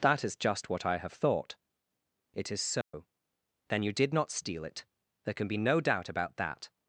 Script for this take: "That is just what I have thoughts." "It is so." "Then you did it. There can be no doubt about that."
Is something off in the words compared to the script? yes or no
yes